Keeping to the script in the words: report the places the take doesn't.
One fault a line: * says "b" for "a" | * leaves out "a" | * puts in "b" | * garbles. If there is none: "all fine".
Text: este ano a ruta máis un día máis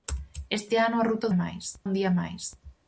all fine